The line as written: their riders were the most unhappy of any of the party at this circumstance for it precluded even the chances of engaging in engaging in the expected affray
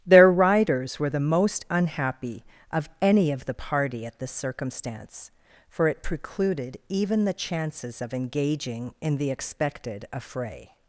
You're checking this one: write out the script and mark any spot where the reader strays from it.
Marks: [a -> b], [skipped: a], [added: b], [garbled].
their riders were the most unhappy of any of the party at this circumstance for it precluded even the chances of engaging in [skipped: engaging in] the expected affray